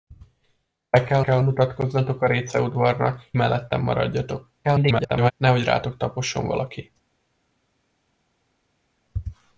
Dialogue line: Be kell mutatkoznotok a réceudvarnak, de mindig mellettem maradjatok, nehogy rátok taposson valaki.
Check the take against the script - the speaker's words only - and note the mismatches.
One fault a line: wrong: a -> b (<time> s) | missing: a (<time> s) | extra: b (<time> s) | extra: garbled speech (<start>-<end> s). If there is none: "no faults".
extra: kell (1.2 s)
missing: de mindig (3.2 s)
extra: garbled speech (4.6-5.3 s)